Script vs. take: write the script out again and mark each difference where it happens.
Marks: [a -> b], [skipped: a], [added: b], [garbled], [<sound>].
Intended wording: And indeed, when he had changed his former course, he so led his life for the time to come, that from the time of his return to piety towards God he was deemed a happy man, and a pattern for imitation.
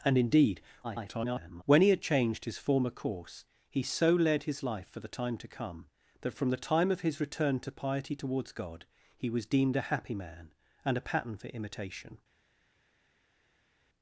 And indeed, [garbled] when he had changed his former course, he so led his life for the time to come, that from the time of his return to piety towards God he was deemed a happy man, and a pattern for imitation.